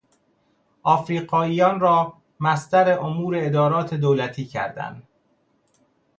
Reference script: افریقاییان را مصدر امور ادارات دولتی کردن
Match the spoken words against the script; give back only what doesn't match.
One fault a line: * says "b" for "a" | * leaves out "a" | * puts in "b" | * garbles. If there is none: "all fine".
all fine